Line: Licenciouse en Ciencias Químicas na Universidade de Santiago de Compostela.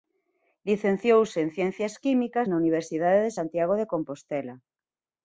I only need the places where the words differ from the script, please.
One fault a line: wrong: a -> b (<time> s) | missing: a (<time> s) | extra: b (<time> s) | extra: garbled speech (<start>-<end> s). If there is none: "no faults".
no faults